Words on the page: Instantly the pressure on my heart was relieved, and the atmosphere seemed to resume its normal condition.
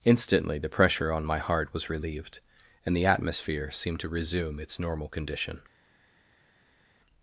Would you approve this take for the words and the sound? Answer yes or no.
yes